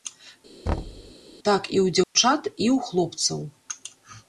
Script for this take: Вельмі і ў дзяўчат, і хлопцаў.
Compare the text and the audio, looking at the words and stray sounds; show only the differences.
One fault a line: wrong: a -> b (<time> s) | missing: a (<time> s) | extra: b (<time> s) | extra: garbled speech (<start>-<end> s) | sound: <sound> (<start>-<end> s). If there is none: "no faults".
sound: thud (0.7-1.1 s)
wrong: Вельмі -> Так (1.5 s)
sound: dropout (2.0-2.1 s)
extra: ў (2.7 s)